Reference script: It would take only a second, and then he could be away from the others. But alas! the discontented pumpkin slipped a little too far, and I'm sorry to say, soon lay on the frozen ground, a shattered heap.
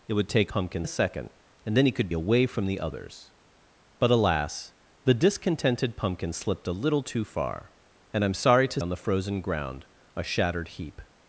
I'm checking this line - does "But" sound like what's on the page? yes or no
yes